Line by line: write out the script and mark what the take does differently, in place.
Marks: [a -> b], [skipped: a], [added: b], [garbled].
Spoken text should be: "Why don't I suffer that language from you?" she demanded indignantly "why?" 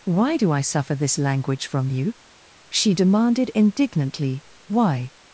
"Why [don't -> do] I suffer [that -> this] language from you?" she demanded indignantly "why?"